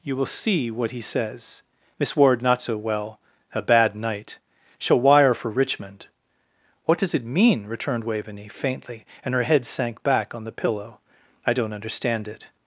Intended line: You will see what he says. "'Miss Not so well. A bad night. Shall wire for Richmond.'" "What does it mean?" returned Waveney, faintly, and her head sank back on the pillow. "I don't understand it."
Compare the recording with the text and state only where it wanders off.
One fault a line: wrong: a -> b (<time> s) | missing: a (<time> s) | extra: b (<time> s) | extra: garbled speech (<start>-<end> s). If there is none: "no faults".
extra: Ward (2.1 s)